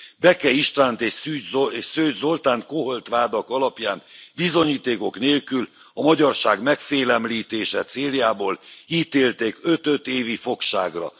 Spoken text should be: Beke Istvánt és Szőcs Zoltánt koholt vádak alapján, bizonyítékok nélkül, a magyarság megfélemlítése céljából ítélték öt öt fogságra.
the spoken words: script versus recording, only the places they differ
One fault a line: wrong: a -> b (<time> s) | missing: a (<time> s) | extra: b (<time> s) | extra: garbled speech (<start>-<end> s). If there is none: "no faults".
extra: évi (10.1 s)